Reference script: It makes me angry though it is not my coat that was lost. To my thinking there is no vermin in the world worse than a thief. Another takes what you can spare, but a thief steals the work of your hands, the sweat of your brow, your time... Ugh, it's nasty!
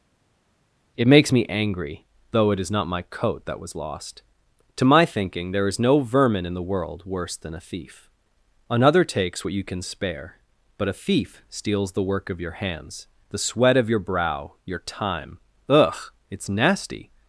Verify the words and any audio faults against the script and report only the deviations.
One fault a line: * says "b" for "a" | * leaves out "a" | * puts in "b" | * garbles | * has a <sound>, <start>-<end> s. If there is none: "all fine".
all fine